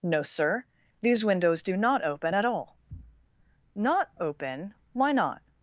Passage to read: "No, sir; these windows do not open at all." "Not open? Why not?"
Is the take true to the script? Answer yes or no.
yes